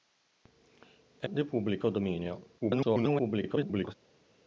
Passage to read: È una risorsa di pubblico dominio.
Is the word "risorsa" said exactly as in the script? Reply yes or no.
no